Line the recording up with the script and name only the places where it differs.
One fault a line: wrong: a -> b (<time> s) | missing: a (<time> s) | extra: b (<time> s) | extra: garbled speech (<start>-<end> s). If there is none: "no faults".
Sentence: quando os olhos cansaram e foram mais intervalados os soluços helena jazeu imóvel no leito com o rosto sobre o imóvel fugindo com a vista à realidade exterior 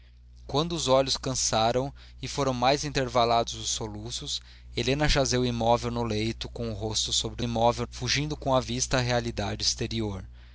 no faults